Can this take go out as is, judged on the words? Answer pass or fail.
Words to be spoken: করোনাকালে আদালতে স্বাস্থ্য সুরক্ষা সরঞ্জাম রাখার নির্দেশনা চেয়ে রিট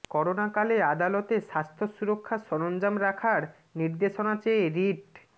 pass